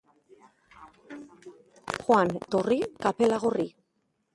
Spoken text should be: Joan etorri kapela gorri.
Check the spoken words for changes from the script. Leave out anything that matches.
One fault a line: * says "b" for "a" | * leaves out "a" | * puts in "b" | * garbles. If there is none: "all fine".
all fine